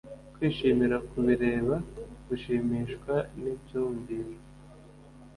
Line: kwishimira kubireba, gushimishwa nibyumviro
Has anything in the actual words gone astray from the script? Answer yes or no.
no